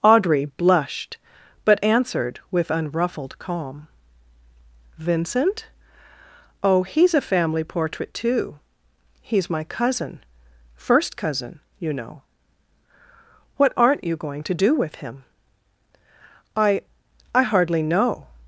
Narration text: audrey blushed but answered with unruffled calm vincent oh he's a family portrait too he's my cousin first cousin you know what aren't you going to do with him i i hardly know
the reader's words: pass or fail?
pass